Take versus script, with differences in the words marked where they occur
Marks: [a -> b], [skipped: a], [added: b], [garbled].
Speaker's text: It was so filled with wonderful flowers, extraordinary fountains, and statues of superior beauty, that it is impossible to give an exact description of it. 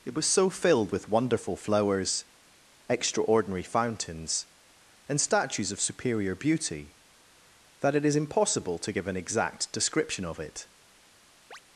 It was so filled with wonderful flowers, extraordinary fountains, and statues of superior beauty, that it is impossible to give an exact description of it.